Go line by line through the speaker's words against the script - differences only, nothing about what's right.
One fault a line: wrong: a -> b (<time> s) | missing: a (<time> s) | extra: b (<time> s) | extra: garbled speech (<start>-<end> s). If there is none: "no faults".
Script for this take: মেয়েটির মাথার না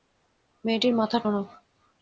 no faults